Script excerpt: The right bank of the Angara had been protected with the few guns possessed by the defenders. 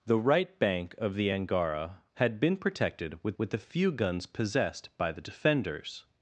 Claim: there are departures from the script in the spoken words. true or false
true